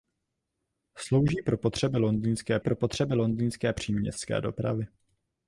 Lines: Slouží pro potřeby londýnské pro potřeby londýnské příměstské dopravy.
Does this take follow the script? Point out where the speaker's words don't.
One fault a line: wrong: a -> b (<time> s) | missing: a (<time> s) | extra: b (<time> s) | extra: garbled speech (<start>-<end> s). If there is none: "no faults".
no faults